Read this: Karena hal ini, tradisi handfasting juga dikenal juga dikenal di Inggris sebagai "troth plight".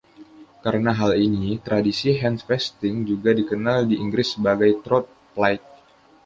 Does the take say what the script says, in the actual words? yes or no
no